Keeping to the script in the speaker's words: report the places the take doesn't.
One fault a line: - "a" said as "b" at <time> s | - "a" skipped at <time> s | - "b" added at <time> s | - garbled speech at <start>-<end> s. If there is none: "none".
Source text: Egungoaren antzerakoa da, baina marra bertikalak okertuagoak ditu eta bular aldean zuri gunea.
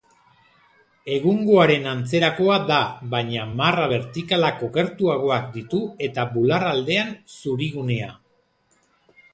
none